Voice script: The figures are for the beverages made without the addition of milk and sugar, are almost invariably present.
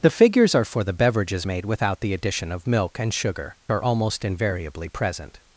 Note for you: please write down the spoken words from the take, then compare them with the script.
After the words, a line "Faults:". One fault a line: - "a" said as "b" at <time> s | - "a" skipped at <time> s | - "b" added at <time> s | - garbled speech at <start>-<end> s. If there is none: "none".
The figures are for the beverages made without the addition of milk and sugar, are almost invariably present.
Faults:
none